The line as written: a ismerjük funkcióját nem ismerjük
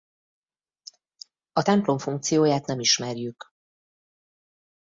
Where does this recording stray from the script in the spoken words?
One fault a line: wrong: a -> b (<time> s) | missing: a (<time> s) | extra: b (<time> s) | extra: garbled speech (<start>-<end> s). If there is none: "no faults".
wrong: ismerjük -> templom (1.6 s)